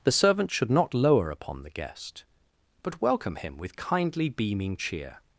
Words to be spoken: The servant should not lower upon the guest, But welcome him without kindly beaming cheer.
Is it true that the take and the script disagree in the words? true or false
true